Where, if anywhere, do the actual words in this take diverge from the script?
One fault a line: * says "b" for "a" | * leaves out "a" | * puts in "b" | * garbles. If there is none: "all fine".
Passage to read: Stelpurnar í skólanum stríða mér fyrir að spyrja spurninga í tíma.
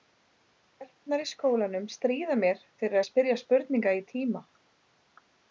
all fine